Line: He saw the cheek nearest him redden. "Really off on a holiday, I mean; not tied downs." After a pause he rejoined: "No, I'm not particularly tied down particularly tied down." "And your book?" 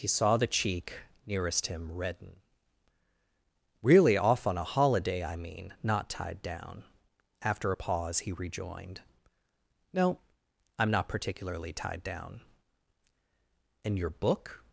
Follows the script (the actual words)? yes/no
no